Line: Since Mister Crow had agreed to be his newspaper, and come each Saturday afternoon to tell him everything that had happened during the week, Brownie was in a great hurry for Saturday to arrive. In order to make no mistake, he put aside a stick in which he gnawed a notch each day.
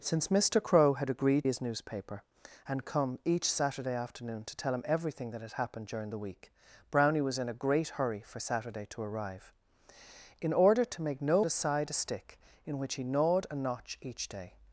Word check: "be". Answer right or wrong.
wrong